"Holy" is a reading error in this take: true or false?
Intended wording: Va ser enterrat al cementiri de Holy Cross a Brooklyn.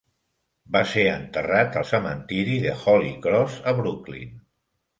false